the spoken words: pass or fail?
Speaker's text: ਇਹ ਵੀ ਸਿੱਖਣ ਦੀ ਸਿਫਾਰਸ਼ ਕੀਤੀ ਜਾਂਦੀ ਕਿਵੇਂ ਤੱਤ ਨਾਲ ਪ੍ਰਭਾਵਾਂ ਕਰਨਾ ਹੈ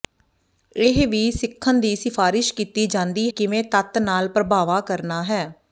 pass